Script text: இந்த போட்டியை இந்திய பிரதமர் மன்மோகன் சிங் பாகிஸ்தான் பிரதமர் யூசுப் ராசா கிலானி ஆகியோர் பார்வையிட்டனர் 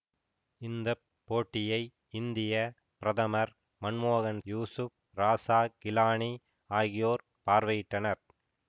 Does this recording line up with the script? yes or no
no